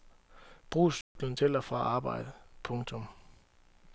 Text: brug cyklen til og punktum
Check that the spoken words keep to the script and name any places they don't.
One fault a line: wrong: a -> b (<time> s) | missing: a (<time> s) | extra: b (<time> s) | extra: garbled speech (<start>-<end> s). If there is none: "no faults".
extra: fra arbejde (1.6 s)